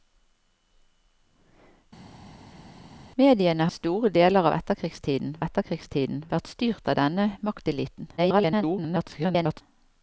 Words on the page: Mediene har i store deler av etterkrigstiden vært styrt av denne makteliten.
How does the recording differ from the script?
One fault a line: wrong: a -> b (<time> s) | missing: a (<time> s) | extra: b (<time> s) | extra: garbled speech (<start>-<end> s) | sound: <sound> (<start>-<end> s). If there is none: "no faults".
missing: har (3.7 s)
extra: etterkrigstiden (5.4 s)
extra: garbled speech (8.2-9.6 s)